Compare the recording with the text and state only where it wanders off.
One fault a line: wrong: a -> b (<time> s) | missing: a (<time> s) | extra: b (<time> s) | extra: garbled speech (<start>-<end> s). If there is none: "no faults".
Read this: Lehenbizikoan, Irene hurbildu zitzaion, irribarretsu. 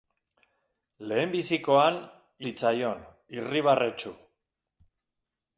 missing: Irene hurbildu (2.0 s)